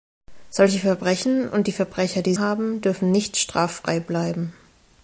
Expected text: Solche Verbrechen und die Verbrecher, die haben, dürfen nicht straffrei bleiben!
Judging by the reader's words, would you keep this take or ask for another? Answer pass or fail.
pass